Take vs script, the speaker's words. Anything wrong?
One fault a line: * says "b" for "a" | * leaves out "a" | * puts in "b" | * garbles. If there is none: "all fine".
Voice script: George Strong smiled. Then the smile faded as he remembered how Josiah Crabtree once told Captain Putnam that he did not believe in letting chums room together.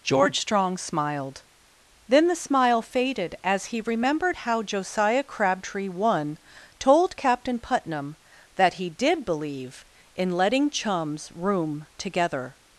* says "one" for "once"
* leaves out "not"